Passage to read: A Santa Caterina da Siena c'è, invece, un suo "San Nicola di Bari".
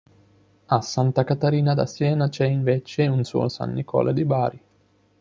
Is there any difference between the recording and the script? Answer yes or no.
no